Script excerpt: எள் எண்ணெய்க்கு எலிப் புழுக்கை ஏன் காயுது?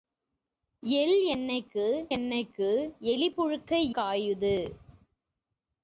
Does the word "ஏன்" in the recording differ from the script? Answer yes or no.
yes